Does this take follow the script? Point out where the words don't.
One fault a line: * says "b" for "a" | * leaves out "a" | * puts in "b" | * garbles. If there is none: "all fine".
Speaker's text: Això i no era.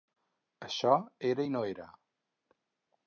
* puts in "era"